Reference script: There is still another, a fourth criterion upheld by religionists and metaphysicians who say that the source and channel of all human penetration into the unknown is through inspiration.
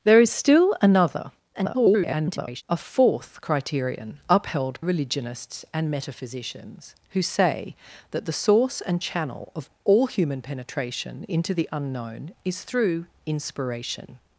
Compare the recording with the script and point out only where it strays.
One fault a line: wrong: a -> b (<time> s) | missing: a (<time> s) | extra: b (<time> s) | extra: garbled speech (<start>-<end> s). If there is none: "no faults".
extra: garbled speech (1.5-2.6 s)
missing: by (4.8 s)